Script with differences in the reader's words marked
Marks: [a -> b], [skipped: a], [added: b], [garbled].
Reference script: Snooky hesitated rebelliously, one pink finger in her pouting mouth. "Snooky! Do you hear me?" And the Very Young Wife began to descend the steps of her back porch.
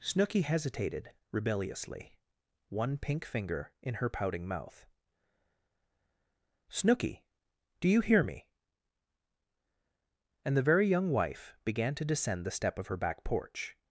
Snooky hesitated rebelliously, one pink finger in her pouting mouth. "Snooky! Do you hear me?" And the Very Young Wife began to descend the [steps -> step] of her back porch.